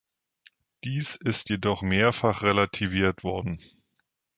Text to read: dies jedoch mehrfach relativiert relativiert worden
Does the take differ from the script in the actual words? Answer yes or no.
yes